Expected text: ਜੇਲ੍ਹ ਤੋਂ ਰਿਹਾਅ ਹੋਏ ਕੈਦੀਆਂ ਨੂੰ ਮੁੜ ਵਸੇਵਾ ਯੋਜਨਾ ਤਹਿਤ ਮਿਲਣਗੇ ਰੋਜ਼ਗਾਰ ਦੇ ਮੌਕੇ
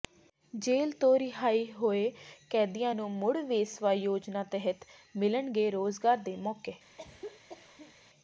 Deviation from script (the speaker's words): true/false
false